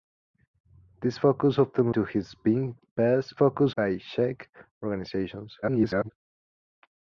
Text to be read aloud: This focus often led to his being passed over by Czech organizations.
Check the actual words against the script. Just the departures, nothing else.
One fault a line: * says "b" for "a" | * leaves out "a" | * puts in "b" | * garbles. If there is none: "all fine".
* leaves out "led"
* says "focus" for "over"
* garbles